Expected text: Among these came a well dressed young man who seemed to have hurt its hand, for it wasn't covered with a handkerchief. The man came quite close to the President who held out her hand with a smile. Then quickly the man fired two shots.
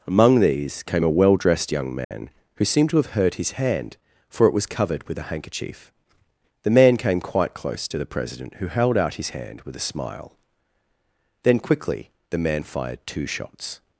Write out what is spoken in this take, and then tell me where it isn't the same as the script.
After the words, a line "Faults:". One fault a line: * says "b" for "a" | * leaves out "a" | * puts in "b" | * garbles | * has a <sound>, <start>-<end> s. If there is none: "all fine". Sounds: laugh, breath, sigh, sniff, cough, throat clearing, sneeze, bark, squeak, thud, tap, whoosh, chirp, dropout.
Among these came a well dressed young man who seemed to have hurt his hand, for it was covered with a handkerchief. The man came quite close to the President who held out his hand with a smile. Then quickly the man fired two shots.
Faults:
* has a dropout, 2.0-2.1 s
* says "his" for "its"
* says "was" for "wasn't"
* says "his" for "her"